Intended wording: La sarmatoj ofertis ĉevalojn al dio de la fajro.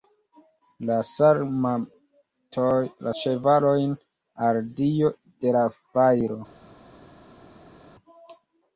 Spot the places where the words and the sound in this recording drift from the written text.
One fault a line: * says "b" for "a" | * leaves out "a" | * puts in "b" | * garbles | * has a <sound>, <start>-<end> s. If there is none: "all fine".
* leaves out "sarmatoj ofertis"